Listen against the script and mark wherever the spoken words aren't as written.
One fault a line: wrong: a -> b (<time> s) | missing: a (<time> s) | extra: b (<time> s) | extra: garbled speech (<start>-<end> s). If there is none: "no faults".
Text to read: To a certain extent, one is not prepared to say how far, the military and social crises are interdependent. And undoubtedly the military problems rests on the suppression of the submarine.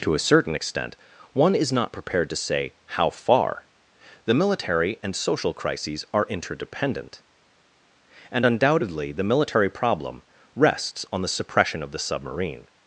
wrong: problems -> problem (9.7 s)